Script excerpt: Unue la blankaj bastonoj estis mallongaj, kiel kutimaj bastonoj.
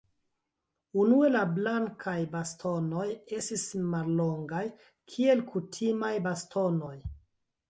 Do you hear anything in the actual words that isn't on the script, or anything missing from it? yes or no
no